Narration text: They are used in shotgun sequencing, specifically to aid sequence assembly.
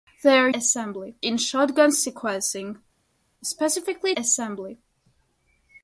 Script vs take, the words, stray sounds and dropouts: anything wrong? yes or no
yes